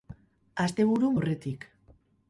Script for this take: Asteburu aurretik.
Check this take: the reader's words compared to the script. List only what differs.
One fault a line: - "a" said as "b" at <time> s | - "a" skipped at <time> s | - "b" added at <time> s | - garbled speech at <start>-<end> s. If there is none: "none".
none